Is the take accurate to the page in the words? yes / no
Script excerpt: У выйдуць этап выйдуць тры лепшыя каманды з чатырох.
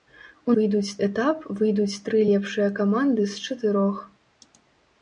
yes